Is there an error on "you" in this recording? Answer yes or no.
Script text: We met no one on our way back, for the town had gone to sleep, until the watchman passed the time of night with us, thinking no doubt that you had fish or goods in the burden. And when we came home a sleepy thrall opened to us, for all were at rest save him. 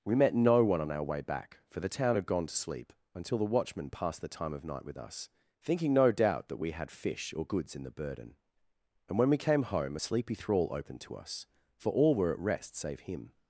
yes